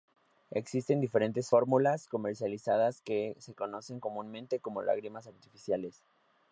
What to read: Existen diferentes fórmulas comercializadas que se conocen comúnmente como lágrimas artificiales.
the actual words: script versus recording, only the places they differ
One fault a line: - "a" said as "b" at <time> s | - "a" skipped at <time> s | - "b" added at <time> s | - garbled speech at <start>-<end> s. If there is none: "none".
none